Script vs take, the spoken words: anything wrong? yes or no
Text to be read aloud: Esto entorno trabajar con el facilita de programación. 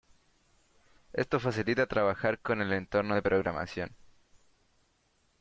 yes